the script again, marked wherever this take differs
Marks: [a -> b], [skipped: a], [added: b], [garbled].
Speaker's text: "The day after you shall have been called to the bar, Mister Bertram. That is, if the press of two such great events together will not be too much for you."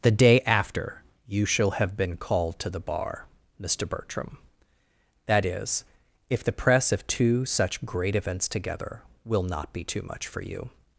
"The day after you shall have been called to the bar, Mister Bertram. That is, if the press of two such great events together will not be too much for you."